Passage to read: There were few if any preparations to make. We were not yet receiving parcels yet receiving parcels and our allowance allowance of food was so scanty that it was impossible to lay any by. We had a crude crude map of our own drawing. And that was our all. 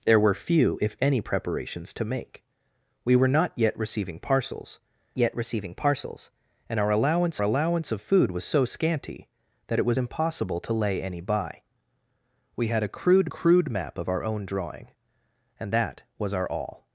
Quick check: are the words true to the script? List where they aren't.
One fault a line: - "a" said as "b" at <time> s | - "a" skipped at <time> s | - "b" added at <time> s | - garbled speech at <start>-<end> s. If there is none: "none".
none